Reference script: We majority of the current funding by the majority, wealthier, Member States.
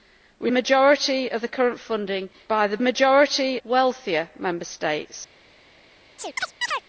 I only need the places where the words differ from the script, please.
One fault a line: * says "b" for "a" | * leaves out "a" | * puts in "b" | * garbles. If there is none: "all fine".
all fine